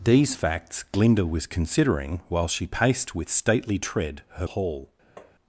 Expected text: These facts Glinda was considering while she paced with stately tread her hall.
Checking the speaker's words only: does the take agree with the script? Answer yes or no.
yes